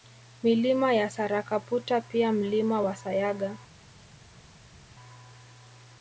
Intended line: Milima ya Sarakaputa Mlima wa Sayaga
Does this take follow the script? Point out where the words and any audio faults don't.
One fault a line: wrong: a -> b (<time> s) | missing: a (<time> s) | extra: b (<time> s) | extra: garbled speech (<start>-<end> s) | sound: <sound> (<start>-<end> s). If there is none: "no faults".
extra: pia (2.0 s)